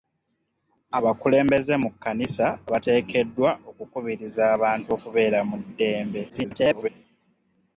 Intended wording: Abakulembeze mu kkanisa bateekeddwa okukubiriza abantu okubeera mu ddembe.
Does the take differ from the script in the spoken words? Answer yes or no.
yes